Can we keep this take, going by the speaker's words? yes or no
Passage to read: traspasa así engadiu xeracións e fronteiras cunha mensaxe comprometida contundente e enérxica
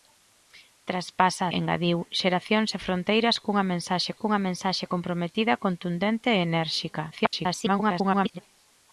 no